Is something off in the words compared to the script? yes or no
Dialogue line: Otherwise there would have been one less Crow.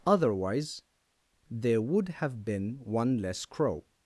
no